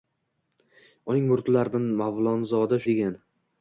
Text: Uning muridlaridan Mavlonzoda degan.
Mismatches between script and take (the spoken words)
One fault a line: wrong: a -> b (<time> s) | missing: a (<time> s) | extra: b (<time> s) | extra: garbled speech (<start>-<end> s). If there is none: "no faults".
no faults